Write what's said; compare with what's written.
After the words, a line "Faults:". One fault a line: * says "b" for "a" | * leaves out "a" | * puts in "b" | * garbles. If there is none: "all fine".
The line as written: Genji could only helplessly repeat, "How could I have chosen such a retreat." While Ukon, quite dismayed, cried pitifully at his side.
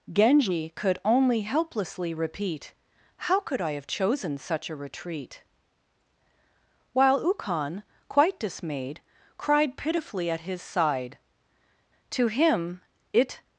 Genji could only helplessly repeat, "How could I have chosen such a retreat." While Ukon, quite dismayed, cried pitifully at his side. To him it
Faults:
* puts in "To him it"